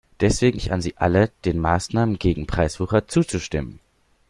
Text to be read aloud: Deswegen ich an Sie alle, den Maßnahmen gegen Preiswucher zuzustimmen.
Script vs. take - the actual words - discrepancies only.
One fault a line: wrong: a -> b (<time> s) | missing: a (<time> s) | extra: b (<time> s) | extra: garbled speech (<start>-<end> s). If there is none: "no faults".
no faults